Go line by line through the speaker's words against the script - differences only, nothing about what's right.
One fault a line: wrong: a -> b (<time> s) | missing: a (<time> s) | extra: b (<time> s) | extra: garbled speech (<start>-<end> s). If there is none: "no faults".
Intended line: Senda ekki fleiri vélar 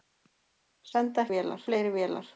wrong: ekki -> vélar (1.3 s)